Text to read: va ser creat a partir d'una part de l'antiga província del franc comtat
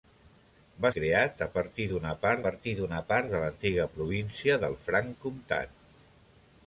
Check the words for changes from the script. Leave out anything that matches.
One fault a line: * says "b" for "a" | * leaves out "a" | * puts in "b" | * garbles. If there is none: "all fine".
* leaves out "ser"
* puts in "partir d'una part"